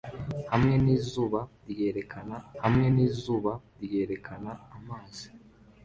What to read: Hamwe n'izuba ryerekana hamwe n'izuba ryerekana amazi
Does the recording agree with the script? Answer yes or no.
yes